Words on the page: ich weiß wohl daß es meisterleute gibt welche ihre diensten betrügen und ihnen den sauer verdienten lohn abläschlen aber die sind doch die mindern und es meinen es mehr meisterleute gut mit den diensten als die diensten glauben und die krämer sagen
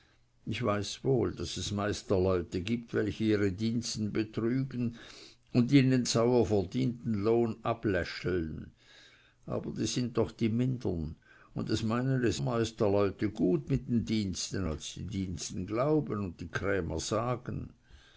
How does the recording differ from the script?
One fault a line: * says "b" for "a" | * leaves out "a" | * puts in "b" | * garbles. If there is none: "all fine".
* leaves out "den"
* leaves out "mehr"